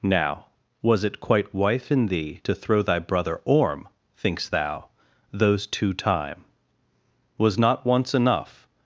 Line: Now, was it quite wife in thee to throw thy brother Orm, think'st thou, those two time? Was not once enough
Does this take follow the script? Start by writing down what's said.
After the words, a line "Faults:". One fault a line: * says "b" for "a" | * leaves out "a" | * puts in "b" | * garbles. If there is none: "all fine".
Now, was it quite wife in thee to throw thy brother Orm, think'st thou, those two time? Was not once enough
Faults:
all fine